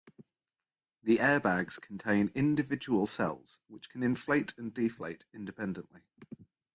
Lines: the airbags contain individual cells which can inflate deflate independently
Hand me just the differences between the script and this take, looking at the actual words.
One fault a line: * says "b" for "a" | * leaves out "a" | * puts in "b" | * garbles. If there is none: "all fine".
* puts in "and"